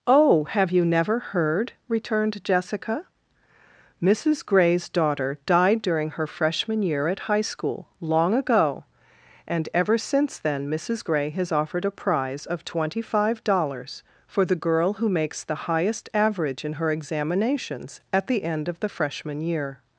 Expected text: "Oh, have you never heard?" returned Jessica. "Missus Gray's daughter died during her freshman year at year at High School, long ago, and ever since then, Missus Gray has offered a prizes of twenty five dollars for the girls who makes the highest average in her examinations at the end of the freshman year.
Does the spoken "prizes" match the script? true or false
false